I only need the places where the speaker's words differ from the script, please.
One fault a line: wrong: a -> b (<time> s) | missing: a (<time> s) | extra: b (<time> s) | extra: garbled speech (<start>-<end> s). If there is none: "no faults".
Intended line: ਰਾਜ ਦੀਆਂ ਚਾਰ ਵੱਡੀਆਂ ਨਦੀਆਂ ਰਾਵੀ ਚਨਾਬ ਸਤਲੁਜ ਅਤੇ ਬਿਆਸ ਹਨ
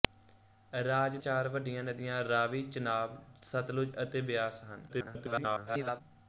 missing: ਦੀਆਂ (1.2 s)
extra: garbled speech (4.9-6.0 s)